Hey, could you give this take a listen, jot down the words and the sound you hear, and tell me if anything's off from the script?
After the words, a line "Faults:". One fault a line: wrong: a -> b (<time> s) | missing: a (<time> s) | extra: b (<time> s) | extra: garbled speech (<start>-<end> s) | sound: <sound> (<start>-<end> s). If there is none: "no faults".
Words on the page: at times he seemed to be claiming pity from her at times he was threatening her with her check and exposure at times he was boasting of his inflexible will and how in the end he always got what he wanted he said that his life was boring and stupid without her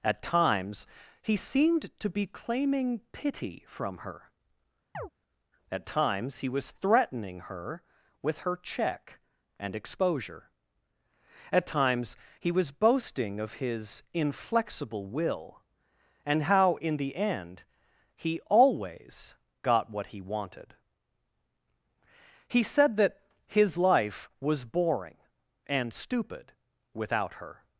at times he seemed to be claiming pity from her at times he was threatening her with her check and exposure at times he was boasting of his inflexible will and how in the end he always got what he wanted he said that his life was boring and stupid without her
Faults:
sound: chirp (4.9-5.1 s)